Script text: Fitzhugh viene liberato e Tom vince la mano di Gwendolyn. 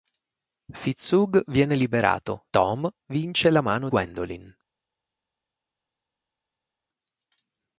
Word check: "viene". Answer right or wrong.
right